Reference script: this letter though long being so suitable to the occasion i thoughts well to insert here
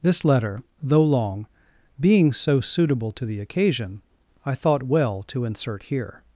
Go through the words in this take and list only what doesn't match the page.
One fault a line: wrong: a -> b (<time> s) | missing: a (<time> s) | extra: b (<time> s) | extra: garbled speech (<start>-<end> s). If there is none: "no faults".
wrong: thoughts -> thought (4.5 s)